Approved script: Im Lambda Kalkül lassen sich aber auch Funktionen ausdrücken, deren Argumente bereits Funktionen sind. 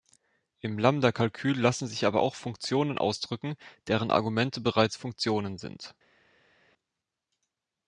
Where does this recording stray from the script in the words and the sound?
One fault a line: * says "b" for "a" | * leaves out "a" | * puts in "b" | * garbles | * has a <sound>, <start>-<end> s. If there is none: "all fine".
all fine